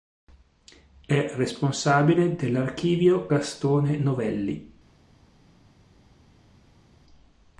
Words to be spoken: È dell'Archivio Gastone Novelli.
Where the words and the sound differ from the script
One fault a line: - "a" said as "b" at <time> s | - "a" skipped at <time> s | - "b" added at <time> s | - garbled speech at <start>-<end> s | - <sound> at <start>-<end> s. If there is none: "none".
- "responsabile" added at 1.4 s